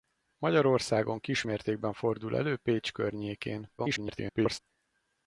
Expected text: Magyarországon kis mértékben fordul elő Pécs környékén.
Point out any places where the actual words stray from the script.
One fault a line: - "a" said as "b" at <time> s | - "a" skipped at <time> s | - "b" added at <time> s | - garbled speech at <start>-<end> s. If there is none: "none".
- garbled speech at 3.8-4.6 s